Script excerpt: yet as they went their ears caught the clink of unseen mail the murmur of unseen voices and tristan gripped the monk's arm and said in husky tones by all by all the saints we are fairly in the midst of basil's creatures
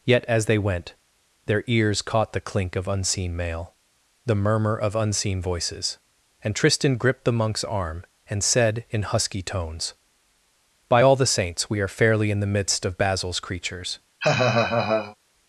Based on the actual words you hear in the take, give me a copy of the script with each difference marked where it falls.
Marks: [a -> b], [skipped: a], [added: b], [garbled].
yet as they went their ears caught the clink of unseen mail the murmur of unseen voices and tristan gripped the monk's arm and said in husky tones by all [skipped: by all] the saints we are fairly in the midst of basil's creatures